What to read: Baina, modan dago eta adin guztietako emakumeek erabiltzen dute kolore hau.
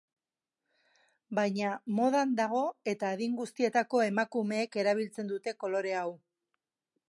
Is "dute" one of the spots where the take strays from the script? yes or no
no